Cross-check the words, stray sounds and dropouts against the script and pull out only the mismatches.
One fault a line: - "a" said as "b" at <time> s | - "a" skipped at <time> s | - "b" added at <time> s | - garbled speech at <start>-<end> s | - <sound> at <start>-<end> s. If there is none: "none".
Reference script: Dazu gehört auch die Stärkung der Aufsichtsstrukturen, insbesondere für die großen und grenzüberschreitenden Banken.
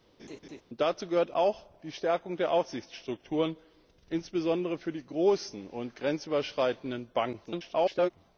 - laugh at 0.2-0.6 s
- garbled speech at 7.4-8.1 s